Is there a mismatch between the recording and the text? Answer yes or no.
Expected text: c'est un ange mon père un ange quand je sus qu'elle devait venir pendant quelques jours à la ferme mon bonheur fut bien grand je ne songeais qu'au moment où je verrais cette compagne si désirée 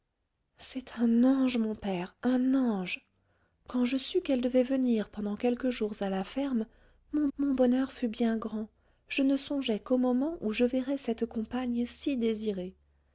yes